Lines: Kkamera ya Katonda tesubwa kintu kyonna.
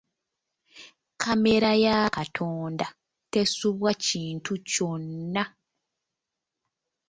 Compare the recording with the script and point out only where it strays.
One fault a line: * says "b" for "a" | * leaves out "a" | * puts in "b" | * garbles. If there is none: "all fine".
all fine